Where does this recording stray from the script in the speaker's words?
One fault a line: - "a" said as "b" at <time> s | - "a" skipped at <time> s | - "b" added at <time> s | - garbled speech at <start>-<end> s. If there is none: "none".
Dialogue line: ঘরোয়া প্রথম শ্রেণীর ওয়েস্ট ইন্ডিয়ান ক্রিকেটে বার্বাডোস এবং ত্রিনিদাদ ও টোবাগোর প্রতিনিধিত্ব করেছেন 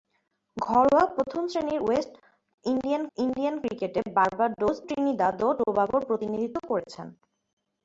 - "ইন্ডিয়ান" added at 3.2 s
- "এবং" skipped at 4.8 s